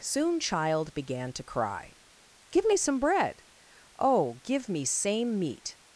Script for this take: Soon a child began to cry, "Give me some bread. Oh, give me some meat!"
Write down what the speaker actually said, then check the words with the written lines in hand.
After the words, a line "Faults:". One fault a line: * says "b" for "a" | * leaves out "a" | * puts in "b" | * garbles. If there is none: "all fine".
Soon child began to cry, "Give me some bread. Oh, give me same meat!"
Faults:
* leaves out "a"
* says "same" for "some"